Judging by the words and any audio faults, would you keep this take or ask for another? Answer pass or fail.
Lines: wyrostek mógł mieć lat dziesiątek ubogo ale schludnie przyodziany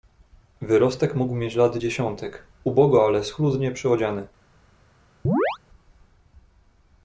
fail